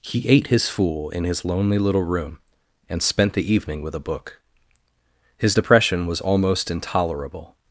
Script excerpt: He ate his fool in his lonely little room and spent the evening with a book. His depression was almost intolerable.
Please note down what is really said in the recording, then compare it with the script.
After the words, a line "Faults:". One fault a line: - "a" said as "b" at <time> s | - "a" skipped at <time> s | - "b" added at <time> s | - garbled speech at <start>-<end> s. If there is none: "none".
He ate his fool in his lonely little room and spent the evening with a book. His depression was almost intolerable.
Faults:
none